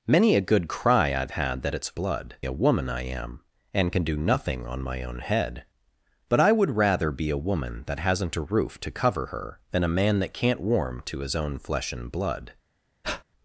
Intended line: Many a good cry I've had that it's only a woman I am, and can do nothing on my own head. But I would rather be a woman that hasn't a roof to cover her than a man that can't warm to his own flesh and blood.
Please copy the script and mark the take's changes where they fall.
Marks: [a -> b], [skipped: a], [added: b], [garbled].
Many a good cry I've had that it's [only -> blood] a woman I am, and can do nothing on my own head. But I would rather be a woman that hasn't a roof to cover her than a man that can't warm to his own flesh and blood.